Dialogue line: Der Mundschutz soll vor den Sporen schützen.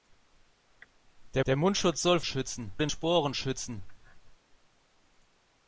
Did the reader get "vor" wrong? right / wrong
wrong